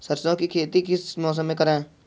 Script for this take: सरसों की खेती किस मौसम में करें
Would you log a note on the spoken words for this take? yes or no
no